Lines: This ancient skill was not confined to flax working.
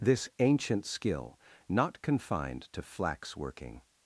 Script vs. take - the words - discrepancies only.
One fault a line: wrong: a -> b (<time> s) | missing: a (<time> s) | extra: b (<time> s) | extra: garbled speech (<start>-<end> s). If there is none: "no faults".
missing: was (1.4 s)